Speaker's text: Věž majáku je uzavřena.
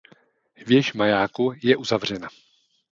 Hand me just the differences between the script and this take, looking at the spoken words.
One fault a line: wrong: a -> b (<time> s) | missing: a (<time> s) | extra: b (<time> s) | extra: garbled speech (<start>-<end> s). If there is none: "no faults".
no faults